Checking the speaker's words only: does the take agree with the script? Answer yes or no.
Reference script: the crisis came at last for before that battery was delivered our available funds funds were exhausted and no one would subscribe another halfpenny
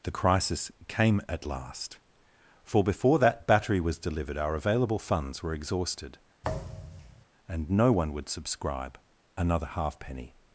no